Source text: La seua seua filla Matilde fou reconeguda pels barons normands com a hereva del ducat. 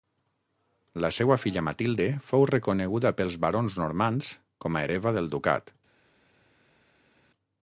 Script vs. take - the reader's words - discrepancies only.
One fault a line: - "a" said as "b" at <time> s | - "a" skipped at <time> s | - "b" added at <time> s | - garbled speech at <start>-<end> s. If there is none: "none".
- "seua" skipped at 1.4 s